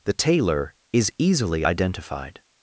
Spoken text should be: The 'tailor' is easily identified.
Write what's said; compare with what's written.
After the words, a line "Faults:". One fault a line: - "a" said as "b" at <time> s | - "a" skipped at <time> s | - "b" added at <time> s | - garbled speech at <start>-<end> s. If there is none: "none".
The 'tailor' is easily identified.
Faults:
none